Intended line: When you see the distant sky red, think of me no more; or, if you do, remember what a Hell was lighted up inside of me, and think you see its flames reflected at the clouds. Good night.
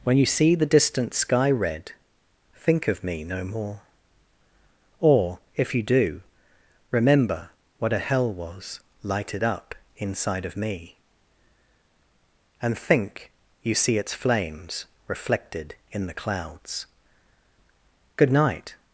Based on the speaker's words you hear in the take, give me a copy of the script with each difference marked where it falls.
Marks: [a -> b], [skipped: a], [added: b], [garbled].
When you see the distant sky red, think of me no more; or, if you do, remember what a Hell was lighted up inside of me, and think you see its flames reflected [at -> in] the clouds. Good night.